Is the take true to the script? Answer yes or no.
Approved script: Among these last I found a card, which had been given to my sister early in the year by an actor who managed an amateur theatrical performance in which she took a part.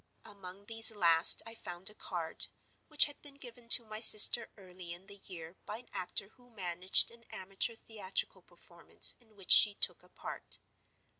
yes